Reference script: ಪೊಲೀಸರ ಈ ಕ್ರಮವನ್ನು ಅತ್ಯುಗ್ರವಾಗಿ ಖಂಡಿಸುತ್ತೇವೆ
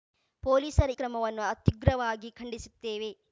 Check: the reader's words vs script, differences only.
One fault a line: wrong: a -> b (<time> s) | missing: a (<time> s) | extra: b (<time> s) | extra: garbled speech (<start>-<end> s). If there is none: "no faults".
missing: ಈ (0.9 s)